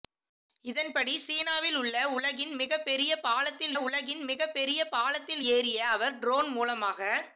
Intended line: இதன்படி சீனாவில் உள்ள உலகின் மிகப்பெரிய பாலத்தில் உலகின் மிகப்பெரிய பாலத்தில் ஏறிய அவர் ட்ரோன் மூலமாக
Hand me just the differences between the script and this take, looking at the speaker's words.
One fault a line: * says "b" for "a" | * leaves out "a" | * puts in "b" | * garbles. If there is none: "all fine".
all fine